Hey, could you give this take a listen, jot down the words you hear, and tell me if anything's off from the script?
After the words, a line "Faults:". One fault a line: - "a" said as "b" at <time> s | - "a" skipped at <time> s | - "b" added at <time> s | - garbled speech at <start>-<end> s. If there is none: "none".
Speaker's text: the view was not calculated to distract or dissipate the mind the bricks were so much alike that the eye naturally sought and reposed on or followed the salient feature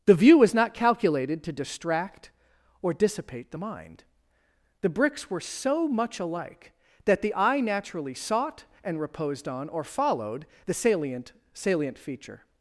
the view was not calculated to distract or dissipate the mind the bricks were so much alike that the eye naturally sought and reposed on or followed the salient salient feature
Faults:
- "salient" added at 11.5 s